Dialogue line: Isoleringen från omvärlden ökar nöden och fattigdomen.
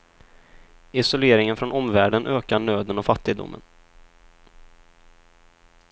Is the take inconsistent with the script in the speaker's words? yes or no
no